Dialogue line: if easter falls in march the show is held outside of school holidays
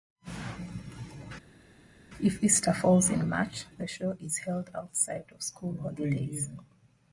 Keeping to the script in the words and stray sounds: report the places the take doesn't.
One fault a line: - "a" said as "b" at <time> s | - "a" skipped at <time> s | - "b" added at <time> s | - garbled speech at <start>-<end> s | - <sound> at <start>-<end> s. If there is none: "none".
none